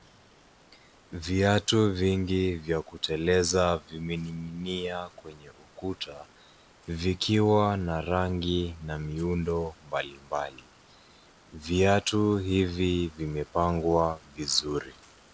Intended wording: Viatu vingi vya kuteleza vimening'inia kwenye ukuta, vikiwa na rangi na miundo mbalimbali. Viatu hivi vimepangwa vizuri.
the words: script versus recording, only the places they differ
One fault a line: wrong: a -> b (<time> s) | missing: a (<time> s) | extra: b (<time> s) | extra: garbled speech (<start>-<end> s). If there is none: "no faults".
no faults